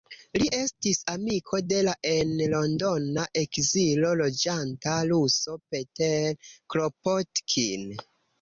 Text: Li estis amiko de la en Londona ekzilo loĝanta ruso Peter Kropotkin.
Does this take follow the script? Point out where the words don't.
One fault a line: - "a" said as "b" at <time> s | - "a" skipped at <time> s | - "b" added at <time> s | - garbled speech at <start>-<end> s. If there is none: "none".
none